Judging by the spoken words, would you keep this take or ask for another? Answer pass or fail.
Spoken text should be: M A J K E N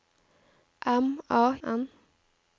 fail